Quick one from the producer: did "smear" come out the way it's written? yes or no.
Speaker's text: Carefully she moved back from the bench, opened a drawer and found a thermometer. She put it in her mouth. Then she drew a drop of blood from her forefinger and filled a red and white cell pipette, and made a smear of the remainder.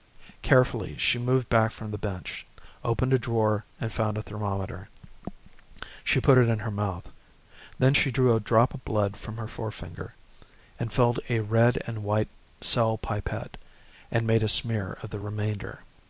yes